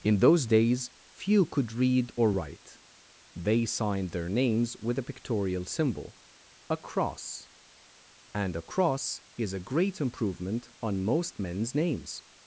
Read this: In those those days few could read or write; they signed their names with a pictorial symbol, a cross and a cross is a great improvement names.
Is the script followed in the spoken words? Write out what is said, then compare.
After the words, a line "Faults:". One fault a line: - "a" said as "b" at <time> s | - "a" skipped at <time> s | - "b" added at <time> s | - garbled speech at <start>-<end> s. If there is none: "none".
In those days few could read or write; they signed their names with a pictorial symbol, a cross and a cross is a great improvement on most men's names.
Faults:
- "those" skipped at 0.5 s
- "on most men's" added at 10.8 s